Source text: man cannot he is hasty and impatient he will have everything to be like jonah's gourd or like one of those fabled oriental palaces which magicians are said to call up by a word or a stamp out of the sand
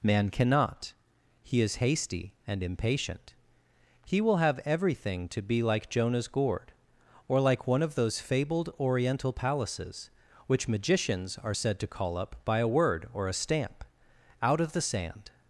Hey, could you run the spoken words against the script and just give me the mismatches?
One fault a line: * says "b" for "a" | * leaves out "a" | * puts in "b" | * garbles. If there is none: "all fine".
all fine